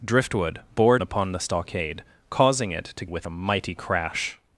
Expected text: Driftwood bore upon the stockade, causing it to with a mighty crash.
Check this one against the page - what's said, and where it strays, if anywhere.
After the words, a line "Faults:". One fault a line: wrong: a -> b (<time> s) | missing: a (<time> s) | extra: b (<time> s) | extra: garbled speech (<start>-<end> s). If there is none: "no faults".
Driftwood bore upon the stockade, causing it to with a mighty crash.
Faults:
no faults